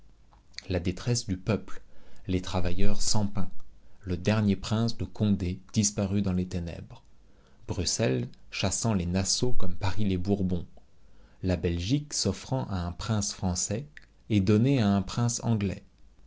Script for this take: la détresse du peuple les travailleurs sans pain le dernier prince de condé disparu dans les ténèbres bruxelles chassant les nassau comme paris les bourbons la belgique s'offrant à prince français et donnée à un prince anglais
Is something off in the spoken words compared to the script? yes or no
yes